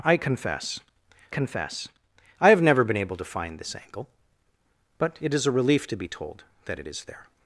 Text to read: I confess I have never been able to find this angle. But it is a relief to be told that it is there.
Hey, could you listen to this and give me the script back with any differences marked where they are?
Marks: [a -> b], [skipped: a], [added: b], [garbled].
I confess [added: confess] I have never been able to find this angle. But it is a relief to be told that it is there.